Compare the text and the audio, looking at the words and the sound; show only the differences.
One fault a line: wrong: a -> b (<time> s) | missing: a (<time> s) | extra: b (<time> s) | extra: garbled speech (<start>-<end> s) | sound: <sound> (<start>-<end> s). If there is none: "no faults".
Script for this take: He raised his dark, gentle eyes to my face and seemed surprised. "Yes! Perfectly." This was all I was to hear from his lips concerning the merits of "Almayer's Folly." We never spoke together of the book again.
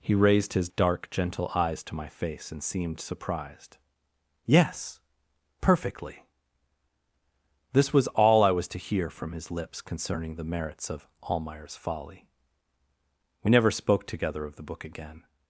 no faults